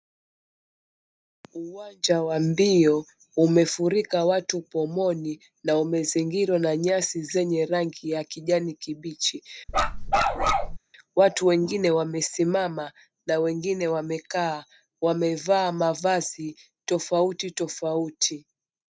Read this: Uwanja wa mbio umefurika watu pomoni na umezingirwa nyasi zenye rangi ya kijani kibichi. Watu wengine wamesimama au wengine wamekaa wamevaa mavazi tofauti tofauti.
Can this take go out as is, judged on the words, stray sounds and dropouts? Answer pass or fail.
fail